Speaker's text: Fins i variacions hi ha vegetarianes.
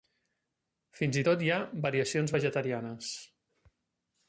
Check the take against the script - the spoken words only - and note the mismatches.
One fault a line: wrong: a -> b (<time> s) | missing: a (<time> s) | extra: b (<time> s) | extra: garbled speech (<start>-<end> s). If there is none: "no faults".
wrong: variacions -> tot (1.3 s)
extra: variacions (1.9 s)